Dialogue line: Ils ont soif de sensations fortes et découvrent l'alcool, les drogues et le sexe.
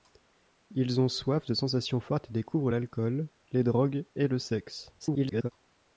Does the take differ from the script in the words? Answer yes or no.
yes